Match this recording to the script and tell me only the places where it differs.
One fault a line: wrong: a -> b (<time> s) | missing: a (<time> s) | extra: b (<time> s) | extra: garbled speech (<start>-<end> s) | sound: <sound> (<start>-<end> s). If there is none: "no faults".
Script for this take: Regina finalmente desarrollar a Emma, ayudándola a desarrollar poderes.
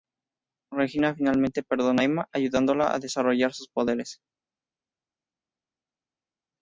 wrong: desarrollar -> perdona (1.6 s)
extra: sus (3.5 s)